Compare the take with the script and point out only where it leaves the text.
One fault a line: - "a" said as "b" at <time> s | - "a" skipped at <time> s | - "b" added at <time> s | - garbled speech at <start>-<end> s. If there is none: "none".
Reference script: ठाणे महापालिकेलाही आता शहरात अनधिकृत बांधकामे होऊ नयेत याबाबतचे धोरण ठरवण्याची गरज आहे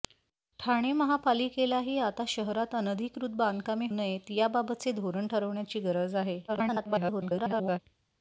- "होऊ" skipped at 3.9 s
- garbled speech at 6.5-7.8 s